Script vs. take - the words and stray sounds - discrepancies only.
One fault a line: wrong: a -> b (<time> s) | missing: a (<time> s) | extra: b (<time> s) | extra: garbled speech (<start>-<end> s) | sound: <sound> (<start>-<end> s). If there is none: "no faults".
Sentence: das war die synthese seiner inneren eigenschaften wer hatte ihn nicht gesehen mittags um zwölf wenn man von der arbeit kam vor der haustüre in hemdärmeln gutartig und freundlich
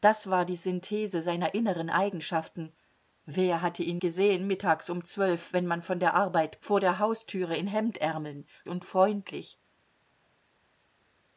missing: nicht (4.0 s)
missing: kam (6.6 s)
missing: gutartig (8.5 s)